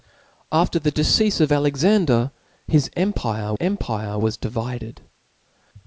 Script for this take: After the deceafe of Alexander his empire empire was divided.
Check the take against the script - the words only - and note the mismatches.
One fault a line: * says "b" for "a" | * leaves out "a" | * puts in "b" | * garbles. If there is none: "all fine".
all fine